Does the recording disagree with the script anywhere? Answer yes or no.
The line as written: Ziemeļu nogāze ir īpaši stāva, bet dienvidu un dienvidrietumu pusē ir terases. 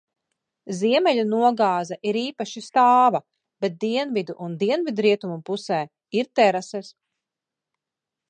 no